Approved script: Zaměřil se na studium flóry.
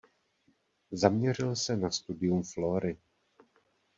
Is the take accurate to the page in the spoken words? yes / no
yes